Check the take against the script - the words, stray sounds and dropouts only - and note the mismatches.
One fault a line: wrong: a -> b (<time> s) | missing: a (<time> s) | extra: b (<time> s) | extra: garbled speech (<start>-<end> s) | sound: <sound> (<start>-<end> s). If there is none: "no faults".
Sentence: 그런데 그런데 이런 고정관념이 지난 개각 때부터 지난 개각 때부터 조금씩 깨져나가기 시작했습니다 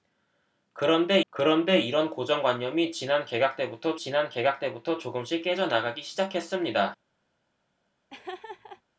sound: laugh (8.1-8.8 s)